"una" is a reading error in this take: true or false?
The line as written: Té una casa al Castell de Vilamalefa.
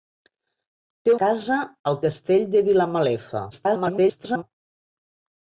true